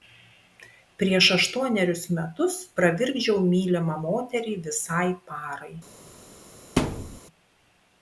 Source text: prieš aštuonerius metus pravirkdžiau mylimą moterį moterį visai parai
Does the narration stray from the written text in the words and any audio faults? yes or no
yes